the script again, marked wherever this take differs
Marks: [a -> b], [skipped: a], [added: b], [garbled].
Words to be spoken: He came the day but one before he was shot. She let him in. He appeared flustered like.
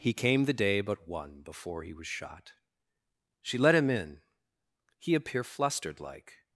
He came the day but one before he was shot. She let him in. He [appeared -> appear] flustered like.